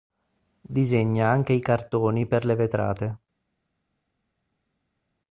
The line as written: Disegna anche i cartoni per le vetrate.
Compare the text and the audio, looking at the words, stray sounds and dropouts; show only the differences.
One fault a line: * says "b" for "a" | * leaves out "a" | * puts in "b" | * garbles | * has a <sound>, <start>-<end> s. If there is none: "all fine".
all fine